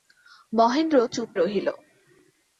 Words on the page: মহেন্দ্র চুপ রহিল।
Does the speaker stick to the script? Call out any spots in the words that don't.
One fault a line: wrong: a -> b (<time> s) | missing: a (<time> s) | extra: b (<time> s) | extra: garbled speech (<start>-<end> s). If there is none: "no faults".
no faults